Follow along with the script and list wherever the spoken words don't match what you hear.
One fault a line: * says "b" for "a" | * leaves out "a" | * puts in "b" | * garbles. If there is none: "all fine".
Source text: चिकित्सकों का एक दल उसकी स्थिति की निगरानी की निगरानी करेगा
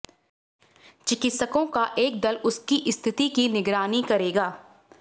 * leaves out "की निगरानी"